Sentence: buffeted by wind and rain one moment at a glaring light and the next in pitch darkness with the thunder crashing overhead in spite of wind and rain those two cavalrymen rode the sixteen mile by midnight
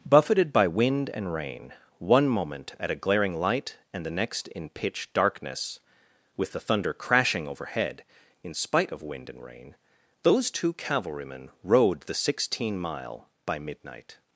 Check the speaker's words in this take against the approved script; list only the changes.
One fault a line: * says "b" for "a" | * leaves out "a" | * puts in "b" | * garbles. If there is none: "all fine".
all fine